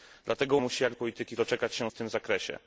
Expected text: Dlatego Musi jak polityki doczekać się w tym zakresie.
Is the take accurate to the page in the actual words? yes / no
yes